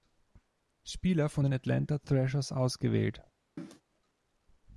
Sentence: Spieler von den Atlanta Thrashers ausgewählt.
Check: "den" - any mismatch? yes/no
no